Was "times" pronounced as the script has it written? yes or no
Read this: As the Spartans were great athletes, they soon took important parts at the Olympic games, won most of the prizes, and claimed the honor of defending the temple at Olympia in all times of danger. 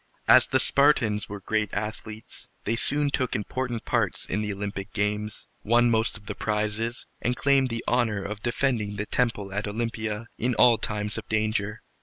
yes